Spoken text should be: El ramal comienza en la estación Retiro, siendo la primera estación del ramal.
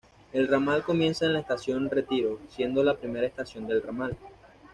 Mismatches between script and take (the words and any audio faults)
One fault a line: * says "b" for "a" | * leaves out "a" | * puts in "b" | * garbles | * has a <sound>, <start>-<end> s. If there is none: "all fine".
all fine